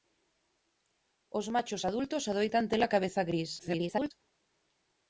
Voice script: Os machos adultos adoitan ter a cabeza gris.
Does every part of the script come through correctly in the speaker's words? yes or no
no